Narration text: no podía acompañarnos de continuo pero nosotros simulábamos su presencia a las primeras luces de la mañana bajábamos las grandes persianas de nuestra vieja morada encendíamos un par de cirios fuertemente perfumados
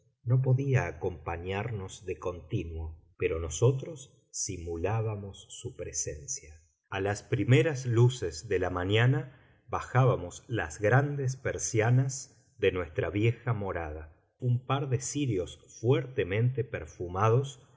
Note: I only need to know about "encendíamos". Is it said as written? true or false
false